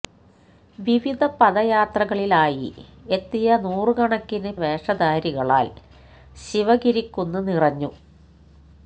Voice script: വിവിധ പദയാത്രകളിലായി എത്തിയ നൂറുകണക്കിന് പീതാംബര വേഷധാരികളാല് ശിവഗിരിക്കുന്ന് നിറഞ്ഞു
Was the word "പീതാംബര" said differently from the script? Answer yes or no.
yes